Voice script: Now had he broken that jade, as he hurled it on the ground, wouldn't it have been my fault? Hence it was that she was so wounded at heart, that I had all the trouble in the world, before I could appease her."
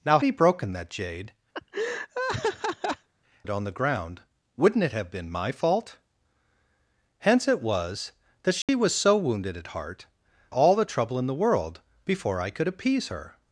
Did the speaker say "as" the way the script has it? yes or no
no